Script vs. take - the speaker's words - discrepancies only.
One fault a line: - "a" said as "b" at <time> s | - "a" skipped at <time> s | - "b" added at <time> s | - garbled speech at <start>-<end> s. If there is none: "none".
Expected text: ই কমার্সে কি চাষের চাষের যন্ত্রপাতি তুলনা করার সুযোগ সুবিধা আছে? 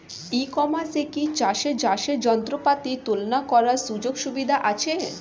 none